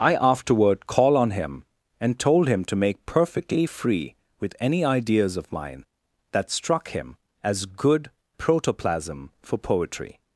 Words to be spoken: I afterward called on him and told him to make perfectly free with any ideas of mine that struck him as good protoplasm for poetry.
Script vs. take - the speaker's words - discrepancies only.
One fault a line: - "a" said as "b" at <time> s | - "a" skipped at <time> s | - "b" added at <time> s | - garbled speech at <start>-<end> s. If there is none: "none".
- "called" said as "call" at 0.9 s